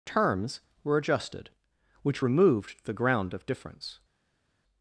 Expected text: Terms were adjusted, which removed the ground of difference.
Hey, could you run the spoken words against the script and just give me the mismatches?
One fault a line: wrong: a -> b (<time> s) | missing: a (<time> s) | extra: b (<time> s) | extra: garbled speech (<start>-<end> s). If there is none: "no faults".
no faults